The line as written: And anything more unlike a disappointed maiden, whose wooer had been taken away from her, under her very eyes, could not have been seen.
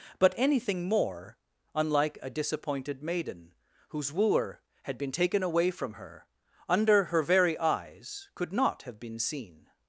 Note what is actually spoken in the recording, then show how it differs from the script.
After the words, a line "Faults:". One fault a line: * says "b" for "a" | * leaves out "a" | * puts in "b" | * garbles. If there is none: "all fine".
But anything more unlike a disappointed maiden, whose wooer had been taken away from her, under her very eyes, could not have been seen.
Faults:
* says "But" for "And"